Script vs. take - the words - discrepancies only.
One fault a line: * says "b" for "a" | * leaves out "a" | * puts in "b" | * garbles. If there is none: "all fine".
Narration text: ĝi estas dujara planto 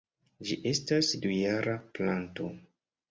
all fine